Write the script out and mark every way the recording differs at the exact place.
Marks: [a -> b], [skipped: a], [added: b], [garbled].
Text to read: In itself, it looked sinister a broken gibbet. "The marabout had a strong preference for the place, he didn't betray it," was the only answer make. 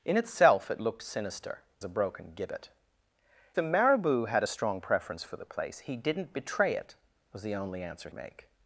In itself, it looked sinister a broken gibbet. "The marabout had a strong preference for the place, he didn't betray it," was the only answer make.